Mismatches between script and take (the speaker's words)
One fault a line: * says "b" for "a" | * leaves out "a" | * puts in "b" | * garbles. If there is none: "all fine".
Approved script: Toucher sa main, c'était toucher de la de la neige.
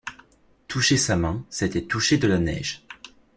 * leaves out "de la"